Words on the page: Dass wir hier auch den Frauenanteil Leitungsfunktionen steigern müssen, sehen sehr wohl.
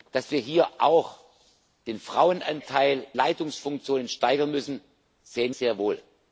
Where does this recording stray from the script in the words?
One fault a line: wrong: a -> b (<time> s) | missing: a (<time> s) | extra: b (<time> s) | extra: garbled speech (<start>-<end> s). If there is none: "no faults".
no faults